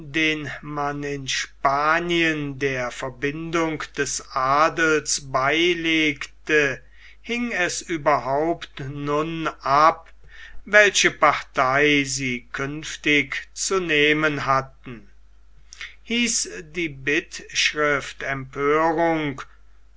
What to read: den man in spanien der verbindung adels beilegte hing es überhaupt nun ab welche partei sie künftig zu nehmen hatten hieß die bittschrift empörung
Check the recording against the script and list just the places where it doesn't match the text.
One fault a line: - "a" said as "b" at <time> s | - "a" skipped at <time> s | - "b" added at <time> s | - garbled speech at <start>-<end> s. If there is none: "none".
- "des" added at 4.0 s